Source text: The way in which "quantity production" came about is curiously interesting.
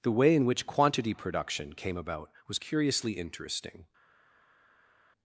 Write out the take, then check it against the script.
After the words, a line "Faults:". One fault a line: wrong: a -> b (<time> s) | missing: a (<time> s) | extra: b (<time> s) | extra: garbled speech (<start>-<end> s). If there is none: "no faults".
The way in which "quantity production" came about was curiously interesting.
Faults:
wrong: is -> was (2.5 s)